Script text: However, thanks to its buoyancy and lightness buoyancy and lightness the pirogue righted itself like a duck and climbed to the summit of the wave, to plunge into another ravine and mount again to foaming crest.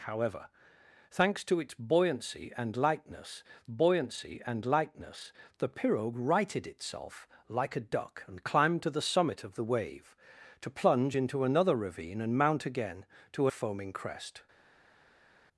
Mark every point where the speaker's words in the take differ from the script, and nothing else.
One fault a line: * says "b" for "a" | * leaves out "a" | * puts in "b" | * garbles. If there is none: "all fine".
all fine